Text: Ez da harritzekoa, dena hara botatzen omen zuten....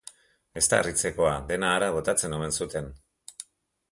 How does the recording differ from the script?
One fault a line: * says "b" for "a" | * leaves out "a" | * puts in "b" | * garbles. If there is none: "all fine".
all fine